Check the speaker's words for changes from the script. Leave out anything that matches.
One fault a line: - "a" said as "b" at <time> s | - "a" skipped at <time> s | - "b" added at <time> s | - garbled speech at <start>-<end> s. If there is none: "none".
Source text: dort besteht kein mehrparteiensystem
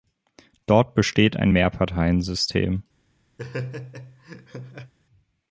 - "kein" said as "ein" at 1.4 s